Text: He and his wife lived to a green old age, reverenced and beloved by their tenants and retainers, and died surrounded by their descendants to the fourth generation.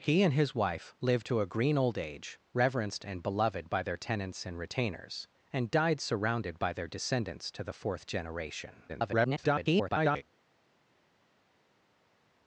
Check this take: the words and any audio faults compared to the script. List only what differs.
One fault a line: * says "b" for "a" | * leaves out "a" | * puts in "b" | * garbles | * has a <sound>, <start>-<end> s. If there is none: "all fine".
* garbles